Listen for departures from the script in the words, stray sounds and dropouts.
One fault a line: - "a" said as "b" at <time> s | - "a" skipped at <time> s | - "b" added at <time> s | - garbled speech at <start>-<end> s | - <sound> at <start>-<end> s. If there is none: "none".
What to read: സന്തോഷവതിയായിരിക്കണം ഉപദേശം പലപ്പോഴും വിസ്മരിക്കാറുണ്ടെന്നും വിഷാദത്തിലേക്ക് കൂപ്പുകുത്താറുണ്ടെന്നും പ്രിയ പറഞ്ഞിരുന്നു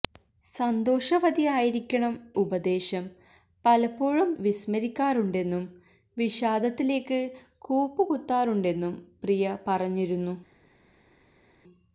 none